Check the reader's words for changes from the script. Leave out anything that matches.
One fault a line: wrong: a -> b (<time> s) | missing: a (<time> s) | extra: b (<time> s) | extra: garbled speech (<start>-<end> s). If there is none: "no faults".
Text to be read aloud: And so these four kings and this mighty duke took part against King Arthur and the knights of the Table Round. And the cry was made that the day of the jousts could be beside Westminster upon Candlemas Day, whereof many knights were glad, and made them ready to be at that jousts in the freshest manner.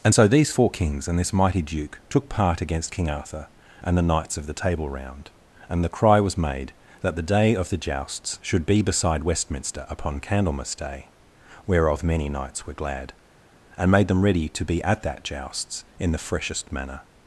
wrong: could -> should (8.4 s)